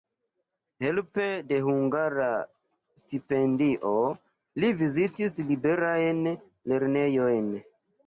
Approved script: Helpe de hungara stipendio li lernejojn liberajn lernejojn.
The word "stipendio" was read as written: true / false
true